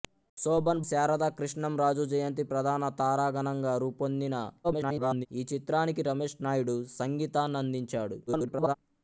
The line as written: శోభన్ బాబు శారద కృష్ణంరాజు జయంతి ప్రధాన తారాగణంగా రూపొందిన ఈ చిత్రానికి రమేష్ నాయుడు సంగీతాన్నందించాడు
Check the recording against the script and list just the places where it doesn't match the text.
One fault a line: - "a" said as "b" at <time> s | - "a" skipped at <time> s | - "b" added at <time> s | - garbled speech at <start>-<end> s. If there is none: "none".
- "బాబు" skipped at 0.8 s
- garbled speech at 4.6-5.3 s
- garbled speech at 8.3-8.8 s